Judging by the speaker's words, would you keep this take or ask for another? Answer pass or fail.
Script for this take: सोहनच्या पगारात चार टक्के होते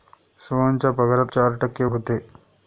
pass